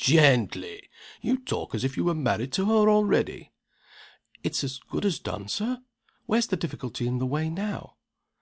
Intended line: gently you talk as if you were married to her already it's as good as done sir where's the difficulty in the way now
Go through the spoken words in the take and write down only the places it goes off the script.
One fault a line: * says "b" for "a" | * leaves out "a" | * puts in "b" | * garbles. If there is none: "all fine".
all fine